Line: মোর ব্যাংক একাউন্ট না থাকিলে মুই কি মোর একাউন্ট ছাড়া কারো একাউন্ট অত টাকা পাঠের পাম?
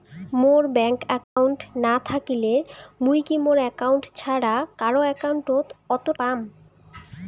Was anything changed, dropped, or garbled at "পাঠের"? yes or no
yes